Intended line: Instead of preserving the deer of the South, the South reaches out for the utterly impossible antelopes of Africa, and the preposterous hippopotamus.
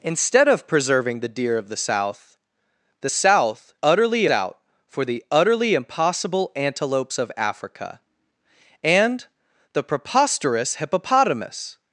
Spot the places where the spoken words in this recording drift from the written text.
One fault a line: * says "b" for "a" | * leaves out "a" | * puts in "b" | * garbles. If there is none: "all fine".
* says "utterly" for "reaches"